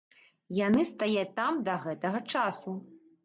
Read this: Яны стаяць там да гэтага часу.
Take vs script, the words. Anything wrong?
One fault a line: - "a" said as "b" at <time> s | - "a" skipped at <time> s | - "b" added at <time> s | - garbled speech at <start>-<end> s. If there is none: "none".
none